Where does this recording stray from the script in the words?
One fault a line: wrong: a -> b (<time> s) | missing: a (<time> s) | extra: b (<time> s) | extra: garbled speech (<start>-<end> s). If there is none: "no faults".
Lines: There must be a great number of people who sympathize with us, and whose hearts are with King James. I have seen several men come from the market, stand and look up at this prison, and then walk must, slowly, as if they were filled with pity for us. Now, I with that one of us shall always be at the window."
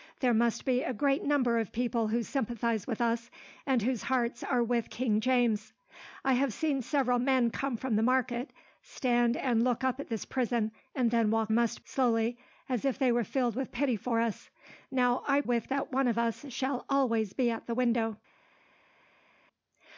no faults